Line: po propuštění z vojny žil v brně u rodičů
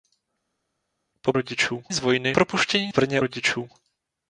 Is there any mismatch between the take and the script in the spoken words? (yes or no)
yes